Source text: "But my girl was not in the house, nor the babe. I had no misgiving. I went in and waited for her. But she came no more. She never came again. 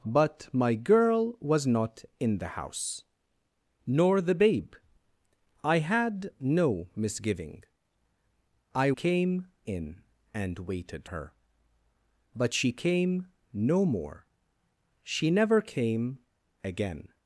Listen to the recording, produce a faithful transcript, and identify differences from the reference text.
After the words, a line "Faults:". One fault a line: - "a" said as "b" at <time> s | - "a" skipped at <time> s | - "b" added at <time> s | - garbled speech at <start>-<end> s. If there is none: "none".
"But my girl was not in the house, nor the babe. I had no misgiving. I came in and waited her. But she came no more. She never came again.
Faults:
- "went" said as "came" at 8.9 s
- "for" skipped at 11.1 s